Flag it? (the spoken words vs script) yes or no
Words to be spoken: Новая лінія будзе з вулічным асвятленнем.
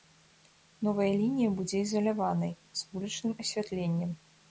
yes